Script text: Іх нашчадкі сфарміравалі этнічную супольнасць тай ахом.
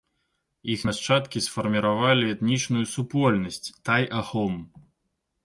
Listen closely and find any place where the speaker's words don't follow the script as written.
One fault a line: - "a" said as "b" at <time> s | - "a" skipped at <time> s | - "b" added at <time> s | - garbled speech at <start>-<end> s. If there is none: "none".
none